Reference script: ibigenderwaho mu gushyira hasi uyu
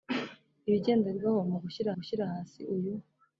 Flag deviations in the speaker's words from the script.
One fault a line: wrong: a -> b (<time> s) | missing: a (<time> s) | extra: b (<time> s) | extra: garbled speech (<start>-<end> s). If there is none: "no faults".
extra: gushyira (2.0 s)